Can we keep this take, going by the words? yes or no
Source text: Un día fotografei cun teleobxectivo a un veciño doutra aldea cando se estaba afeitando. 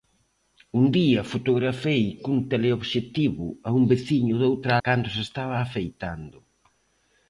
no